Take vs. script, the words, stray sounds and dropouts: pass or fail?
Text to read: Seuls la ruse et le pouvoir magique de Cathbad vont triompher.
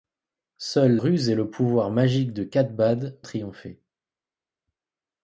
fail